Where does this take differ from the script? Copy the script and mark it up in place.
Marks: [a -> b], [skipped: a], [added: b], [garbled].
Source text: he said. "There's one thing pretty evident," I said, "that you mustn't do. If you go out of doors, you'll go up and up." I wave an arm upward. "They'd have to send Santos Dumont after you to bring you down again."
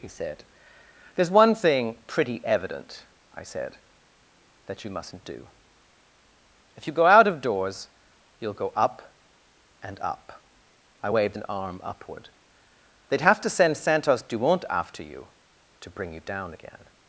he said. "There's one thing pretty evident," I said, "that you mustn't do. If you go out of doors, you'll go up and up." I [wave -> waved] an arm upward. "They'd have to send Santos Dumont after you to bring you down again."